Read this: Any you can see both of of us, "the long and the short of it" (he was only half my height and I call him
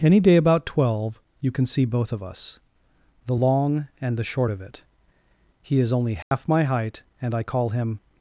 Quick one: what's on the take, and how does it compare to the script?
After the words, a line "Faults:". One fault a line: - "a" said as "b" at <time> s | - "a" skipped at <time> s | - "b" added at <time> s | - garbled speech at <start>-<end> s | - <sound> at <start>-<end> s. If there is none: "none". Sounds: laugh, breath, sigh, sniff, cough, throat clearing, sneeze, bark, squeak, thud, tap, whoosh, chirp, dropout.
Any day about twelve you can see both of us, "the long and the short of it" (he is only half my height and I call him
Faults:
- "day about twelve" added at 0.2 s
- "of" skipped at 2.2 s
- "was" said as "is" at 5.8 s
- dropout at 6.2-6.3 s